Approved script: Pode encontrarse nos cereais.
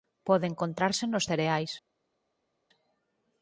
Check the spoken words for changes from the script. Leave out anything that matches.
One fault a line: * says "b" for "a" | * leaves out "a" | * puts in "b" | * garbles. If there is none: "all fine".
all fine